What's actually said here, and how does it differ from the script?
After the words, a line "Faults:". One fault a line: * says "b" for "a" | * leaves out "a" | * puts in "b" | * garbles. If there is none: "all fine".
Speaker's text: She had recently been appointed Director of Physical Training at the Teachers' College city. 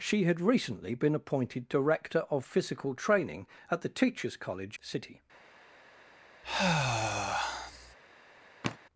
She had recently been appointed Director of Physical Training at the Teachers' College city.
Faults:
all fine